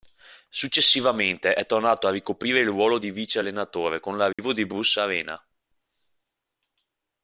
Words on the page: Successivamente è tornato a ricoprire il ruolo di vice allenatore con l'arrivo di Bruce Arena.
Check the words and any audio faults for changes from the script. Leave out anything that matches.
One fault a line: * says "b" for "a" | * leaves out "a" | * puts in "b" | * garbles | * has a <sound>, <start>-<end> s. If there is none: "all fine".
* has a dropout, 4.3-4.4 s